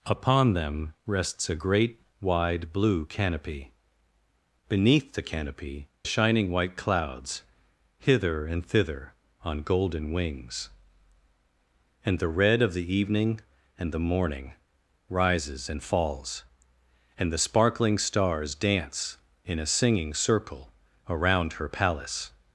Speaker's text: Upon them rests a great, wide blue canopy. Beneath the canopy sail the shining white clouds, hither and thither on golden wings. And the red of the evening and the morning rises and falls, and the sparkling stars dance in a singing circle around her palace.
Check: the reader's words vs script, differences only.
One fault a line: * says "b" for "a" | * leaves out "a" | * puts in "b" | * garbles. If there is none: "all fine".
* leaves out "sail the"